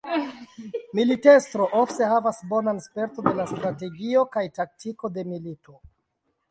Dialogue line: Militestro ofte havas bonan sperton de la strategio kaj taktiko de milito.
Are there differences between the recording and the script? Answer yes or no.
no